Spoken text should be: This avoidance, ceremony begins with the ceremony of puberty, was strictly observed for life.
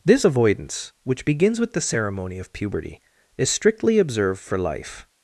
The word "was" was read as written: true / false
false